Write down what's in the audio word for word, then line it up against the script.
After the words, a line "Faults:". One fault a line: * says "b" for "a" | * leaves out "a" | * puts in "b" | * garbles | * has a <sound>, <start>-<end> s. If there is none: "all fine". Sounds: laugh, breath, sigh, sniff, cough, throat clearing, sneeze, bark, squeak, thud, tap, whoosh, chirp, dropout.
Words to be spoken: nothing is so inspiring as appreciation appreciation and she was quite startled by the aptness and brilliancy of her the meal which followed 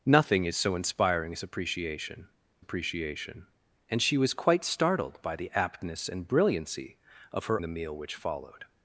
nothing is so inspiring as appreciation appreciation and she was quite startled by the aptness and brilliancy of her the meal which followed
Faults:
all fine